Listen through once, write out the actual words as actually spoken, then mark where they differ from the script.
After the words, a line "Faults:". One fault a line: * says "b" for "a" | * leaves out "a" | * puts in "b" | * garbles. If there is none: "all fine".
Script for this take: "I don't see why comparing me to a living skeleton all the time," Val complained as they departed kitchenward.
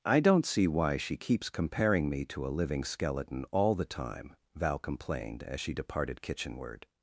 "I don't see why she keeps comparing me to a living skeleton all the time," Val complained as she departed kitchenward.
Faults:
* puts in "she keeps"
* says "she" for "they"